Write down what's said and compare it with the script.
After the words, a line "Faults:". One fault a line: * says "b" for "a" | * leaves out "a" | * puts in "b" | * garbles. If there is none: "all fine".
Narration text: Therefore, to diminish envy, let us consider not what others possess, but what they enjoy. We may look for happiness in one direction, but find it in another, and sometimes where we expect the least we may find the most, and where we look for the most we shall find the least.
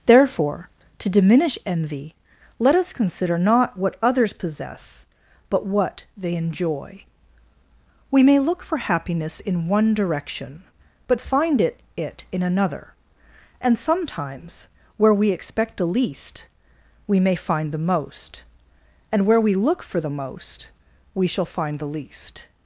Therefore, to diminish envy, let us consider not what others possess, but what they enjoy. We may look for happiness in one direction, but find it it in another, and sometimes where we expect the least we may find the most, and where we look for the most we shall find the least.
Faults:
* puts in "it"